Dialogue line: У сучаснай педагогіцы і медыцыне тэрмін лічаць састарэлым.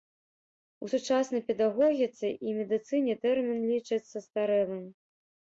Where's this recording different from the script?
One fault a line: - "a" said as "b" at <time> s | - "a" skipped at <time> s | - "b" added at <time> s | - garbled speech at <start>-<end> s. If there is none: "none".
none